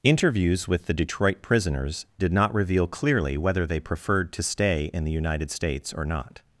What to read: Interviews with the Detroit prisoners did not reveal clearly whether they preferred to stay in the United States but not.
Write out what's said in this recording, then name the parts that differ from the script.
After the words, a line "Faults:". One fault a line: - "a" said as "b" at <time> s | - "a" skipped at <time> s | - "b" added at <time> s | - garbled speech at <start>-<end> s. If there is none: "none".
Interviews with the Detroit prisoners did not reveal clearly whether they preferred to stay in the United States or not.
Faults:
- "but" said as "or" at 5.9 s